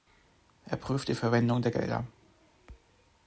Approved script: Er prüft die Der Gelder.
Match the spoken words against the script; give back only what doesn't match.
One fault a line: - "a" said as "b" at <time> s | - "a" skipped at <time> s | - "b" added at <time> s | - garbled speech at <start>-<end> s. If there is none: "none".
- "Verwendung" added at 1.1 s